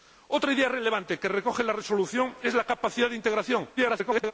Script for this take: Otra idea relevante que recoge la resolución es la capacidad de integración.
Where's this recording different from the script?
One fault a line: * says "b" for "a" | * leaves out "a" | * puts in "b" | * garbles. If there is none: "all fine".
* garbles